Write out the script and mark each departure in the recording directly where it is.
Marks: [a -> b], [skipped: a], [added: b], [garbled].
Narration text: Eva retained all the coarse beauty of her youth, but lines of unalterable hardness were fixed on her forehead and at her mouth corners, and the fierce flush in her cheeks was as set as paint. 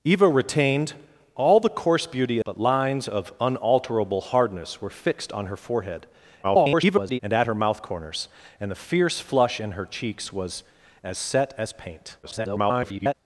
Eva retained all the coarse beauty [skipped: of her youth,] but lines of unalterable hardness were fixed on her forehead [garbled] and at her mouth corners, and the fierce flush in her cheeks was as set as paint. [garbled]